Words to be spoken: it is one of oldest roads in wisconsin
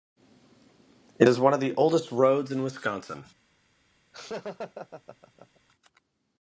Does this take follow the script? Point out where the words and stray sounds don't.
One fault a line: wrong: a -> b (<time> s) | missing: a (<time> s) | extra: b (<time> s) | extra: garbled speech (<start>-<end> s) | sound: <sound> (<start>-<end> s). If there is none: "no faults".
extra: the (1.6 s)
sound: laugh (4.1-5.6 s)